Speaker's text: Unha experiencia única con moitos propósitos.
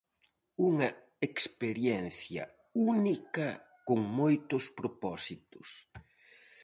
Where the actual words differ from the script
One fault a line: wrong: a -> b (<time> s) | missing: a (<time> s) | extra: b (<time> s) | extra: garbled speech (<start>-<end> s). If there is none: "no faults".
no faults